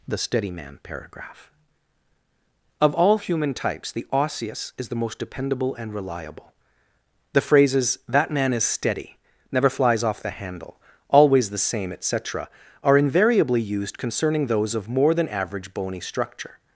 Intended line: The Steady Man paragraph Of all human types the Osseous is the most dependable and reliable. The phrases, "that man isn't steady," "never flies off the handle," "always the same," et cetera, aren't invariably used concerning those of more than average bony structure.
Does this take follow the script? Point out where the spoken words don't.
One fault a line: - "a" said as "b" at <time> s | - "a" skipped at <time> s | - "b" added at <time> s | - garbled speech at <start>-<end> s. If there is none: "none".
- "isn't" said as "is" at 8.5 s
- "aren't" said as "are" at 12.8 s